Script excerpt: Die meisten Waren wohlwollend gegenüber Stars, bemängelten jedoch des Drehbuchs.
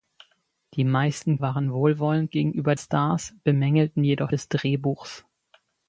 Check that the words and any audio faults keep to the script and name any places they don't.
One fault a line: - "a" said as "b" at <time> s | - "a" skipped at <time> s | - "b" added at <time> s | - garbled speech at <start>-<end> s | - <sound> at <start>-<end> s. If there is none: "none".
none